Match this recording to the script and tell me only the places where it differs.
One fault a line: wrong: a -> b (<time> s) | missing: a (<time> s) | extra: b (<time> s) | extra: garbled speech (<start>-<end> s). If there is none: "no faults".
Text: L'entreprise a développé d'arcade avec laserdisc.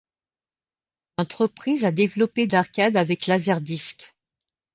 no faults